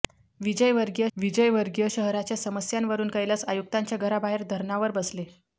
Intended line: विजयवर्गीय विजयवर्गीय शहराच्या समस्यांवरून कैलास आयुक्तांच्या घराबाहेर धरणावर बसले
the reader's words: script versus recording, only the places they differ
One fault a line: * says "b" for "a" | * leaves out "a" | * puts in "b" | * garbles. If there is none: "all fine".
all fine